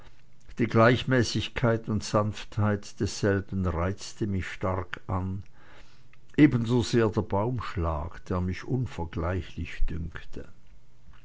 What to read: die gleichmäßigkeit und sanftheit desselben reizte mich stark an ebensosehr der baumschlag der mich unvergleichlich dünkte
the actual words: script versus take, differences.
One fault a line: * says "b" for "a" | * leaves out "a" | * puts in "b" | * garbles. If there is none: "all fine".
all fine